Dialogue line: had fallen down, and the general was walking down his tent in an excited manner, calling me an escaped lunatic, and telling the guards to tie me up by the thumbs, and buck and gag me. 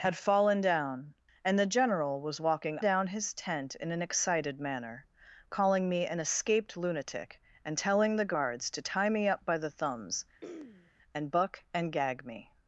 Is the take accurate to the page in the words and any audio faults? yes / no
no